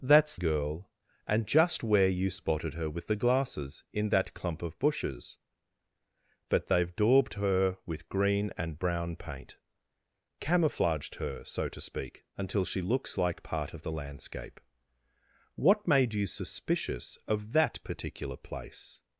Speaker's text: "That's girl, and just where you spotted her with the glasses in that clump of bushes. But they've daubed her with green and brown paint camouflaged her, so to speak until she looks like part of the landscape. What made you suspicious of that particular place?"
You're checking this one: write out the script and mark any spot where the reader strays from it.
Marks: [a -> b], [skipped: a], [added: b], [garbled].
"That's girl, and just where you spotted her with the glasses in that clump of bushes. But they've daubed her with green and brown paint camouflaged her, so to speak until she looks like part of the landscape. What made you suspicious of that particular place?"